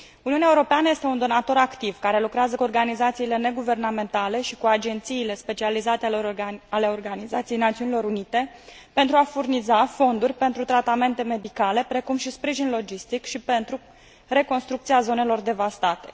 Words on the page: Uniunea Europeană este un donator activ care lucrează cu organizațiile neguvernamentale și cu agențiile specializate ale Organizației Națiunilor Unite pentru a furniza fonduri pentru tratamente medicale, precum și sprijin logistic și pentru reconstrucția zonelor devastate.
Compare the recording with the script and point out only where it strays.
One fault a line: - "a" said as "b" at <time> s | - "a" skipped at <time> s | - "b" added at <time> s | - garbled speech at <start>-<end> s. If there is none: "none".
none